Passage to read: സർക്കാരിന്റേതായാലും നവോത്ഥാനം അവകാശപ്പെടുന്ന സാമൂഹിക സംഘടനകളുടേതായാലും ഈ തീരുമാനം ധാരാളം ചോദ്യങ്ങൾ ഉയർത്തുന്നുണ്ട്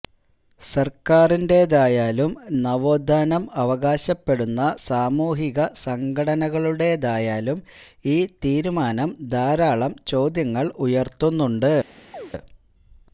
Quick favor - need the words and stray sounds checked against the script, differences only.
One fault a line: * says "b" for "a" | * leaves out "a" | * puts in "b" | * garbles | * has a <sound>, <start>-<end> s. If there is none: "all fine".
* has a chirp, 12.1-12.3 s